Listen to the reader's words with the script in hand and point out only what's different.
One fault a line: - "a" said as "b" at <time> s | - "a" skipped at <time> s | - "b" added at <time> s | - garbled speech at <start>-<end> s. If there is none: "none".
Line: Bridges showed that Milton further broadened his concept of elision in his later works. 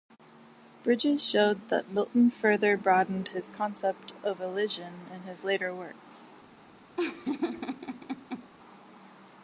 none